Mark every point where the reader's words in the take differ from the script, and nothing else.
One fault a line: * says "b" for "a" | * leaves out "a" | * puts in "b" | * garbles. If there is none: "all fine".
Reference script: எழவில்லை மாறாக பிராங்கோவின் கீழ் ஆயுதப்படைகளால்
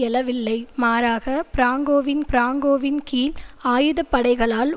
* puts in "பிராங்கோவின்"